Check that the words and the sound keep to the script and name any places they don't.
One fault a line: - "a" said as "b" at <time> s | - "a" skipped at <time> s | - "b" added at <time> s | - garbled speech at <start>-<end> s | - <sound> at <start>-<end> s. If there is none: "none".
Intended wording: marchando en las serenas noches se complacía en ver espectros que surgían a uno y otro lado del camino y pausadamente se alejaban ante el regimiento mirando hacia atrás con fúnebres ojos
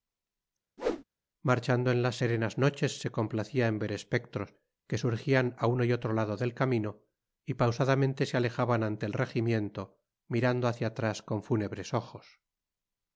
- whoosh at 0.8-1.0 s